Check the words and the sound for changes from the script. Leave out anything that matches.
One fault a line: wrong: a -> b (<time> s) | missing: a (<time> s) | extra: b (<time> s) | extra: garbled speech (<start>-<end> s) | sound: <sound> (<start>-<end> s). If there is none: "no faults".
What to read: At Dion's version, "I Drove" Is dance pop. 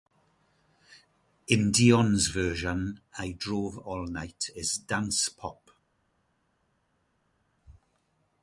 wrong: At -> In (1.5 s)
extra: All Night (3.8 s)